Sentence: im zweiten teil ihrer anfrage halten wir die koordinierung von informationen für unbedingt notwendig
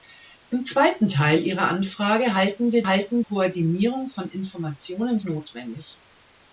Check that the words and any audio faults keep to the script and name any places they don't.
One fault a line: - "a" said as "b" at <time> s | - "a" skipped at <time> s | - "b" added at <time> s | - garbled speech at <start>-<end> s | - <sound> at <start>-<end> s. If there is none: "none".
- "die" said as "halten" at 2.8 s
- "für unbedingt" skipped at 5.2 s